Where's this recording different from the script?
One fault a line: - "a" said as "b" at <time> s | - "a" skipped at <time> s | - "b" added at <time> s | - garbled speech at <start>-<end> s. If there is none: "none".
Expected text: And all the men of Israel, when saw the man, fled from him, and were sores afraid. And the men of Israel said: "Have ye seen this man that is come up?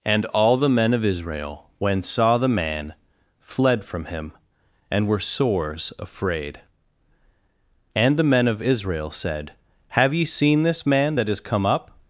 none